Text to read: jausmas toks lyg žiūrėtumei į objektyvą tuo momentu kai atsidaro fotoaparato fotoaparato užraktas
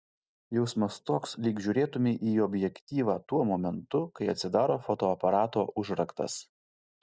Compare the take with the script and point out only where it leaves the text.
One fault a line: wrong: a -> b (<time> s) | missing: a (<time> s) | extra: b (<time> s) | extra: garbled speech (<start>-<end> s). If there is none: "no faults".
missing: fotoaparato (5.7 s)